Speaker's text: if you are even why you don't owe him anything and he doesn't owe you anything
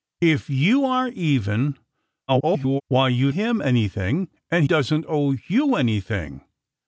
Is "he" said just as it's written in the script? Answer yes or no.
no